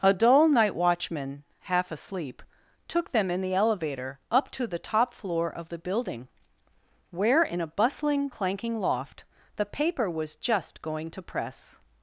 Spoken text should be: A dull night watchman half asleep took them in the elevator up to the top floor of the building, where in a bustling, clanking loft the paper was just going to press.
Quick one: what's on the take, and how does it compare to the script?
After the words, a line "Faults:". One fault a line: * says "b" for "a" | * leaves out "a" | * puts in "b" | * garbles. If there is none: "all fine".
A dull night watchman half asleep took them in the elevator up to the top floor of the building, where in a bustling, clanking loft the paper was just going to press.
Faults:
all fine